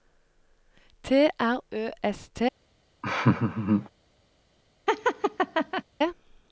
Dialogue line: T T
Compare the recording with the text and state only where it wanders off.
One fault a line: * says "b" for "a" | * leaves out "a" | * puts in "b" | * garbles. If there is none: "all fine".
* puts in "R Ø S"